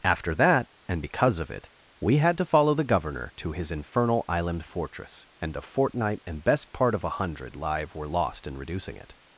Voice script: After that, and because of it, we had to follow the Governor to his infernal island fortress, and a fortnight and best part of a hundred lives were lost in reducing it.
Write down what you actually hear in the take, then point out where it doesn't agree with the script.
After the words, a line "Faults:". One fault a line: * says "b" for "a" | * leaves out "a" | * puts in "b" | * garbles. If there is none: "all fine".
After that, and because of it, we had to follow the Governor to his infernal island fortress, and a fortnight and best part of a hundred live were lost in reducing it.
Faults:
* says "live" for "lives"